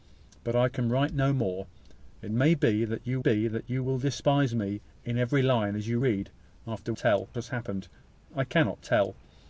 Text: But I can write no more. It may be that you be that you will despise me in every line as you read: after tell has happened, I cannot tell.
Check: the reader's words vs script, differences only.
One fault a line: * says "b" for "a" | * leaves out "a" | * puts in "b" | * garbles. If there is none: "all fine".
all fine